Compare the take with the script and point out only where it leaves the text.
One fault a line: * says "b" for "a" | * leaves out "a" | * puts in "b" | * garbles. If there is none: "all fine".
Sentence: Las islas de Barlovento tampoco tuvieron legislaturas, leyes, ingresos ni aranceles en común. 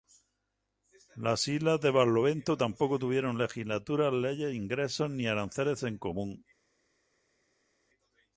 all fine